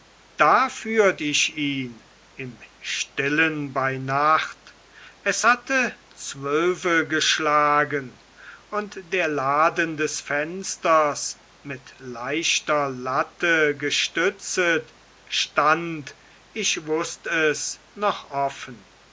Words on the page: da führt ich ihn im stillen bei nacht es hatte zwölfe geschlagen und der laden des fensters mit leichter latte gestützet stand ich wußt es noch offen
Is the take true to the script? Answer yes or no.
yes